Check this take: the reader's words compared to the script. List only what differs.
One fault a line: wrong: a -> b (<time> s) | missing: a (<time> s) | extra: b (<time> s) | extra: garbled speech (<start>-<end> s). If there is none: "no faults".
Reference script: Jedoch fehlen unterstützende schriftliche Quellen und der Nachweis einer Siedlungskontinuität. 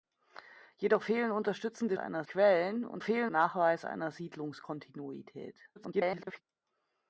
wrong: schriftliche -> einer (2.0 s)
wrong: der -> fehlen (3.0 s)
extra: garbled speech (5.8-6.4 s)